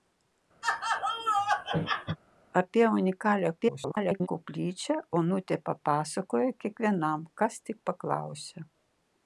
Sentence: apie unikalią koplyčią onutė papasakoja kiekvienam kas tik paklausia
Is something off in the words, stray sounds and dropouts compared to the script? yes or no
yes